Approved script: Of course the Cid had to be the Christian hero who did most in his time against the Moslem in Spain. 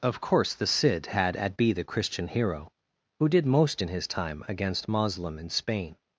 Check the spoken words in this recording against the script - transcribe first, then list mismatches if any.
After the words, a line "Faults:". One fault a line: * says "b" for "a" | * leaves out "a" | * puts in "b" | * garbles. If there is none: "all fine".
Of course the Cid had at be the Christian hero who did most in his time against Moslem in Spain.
Faults:
* says "at" for "to"
* leaves out "the"